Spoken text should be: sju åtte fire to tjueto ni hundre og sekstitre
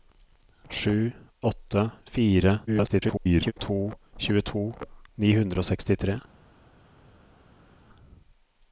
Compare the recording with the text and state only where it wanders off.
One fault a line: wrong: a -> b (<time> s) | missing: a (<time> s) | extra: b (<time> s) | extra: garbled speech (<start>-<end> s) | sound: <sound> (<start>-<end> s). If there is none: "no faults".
extra: garbled speech (2.7-3.5 s)